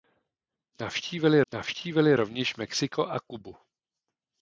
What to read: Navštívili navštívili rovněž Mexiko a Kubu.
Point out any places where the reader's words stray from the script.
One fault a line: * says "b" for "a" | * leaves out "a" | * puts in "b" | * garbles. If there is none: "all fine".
all fine